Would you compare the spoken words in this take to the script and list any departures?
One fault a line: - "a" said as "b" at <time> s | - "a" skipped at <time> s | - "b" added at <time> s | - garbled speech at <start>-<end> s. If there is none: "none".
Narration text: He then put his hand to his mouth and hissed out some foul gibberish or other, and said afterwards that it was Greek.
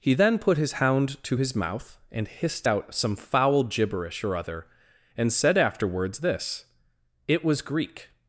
- "hand" said as "hound" at 0.7 s
- "that" said as "this" at 6.2 s